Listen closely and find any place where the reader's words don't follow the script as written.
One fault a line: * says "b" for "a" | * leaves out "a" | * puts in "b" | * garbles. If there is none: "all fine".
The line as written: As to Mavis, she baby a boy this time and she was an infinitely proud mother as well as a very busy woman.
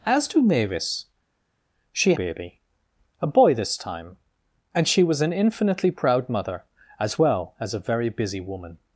all fine